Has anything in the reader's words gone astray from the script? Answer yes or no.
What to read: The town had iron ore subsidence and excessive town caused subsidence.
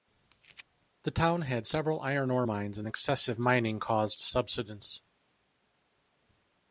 yes